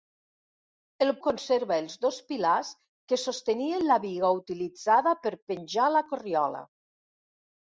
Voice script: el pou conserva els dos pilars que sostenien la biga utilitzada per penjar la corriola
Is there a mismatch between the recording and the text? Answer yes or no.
yes